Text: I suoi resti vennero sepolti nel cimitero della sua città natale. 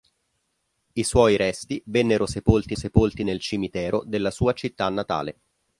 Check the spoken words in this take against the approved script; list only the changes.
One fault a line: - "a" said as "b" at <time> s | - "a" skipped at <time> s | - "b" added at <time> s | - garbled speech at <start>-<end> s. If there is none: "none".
- "sepolti" added at 2.7 s